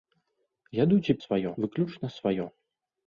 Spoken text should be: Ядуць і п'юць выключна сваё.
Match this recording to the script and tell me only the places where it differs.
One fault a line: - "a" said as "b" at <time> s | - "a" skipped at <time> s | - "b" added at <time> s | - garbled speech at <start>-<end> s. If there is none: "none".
- "п'юць" said as "сваё" at 1.2 s